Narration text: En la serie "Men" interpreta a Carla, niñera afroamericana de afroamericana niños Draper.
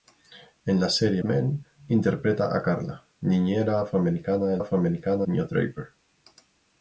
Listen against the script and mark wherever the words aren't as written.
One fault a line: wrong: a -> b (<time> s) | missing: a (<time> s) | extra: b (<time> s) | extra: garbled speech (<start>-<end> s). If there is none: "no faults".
no faults